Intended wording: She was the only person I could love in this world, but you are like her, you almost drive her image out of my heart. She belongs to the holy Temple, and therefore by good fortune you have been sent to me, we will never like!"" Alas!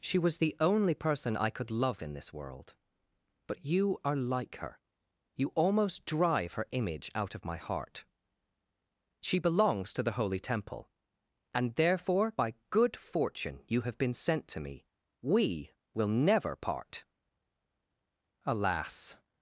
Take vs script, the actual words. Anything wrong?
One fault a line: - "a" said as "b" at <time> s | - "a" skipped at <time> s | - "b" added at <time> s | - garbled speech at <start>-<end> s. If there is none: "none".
- "like" said as "part" at 16.5 s